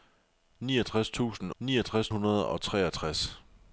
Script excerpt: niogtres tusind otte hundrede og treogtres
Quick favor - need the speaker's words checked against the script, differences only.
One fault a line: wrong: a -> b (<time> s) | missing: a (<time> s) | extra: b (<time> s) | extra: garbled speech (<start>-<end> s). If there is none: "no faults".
wrong: otte -> niogtres (1.6 s)